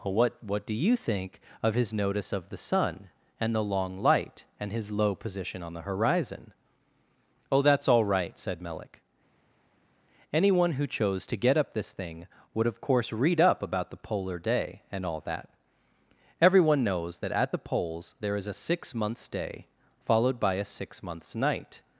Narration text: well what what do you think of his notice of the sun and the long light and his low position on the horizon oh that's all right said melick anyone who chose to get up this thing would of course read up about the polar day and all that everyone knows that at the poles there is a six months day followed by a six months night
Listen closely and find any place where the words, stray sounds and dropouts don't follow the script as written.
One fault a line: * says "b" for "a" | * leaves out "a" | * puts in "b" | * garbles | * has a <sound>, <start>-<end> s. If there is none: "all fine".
all fine